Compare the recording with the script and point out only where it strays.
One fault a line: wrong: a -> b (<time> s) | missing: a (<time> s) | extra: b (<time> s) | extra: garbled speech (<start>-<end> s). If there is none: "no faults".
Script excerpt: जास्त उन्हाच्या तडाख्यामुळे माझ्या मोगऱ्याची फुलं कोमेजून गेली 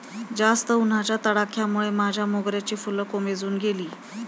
no faults